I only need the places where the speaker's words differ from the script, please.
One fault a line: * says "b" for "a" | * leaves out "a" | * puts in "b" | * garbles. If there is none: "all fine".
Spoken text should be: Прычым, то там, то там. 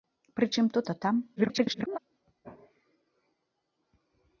* leaves out "там"
* garbles